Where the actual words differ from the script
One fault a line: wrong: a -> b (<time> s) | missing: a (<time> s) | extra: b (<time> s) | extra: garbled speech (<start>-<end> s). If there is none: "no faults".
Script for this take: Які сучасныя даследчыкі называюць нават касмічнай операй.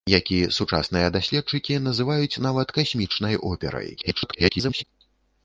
extra: garbled speech (4.0-4.8 s)